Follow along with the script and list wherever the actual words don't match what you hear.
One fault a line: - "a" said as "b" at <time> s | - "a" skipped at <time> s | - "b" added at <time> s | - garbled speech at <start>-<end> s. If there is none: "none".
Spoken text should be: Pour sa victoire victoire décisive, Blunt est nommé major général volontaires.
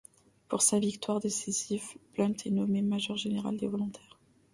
- "victoire" skipped at 1.2 s
- "des" added at 3.6 s